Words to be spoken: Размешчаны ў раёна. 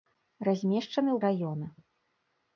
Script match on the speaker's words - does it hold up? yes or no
yes